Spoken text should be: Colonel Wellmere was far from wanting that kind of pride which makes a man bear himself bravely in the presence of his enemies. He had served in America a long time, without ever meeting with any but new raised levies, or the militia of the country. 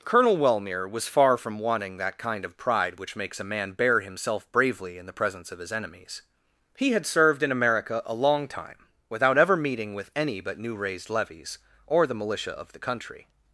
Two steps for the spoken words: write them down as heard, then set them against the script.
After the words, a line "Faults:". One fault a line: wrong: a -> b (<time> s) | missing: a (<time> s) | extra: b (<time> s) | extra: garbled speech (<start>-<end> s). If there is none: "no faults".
Colonel Wellmere was far from wanting that kind of pride which makes a man bear himself bravely in the presence of his enemies. He had served in America a long time, without ever meeting with any but new raised levies, or the militia of the country.
Faults:
no faults